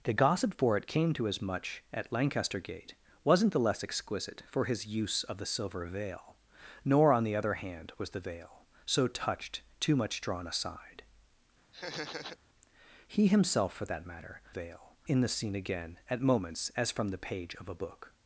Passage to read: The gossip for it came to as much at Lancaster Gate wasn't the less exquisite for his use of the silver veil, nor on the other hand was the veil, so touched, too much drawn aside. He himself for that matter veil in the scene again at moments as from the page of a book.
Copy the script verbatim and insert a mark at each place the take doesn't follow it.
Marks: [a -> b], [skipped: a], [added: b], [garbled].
The gossip for it came to as much at Lancaster Gate wasn't the less exquisite for his use of the silver veil, nor on the other hand was the veil, so touched, too much drawn aside. He himself for that matter veil in the scene again at moments as from the page of a book.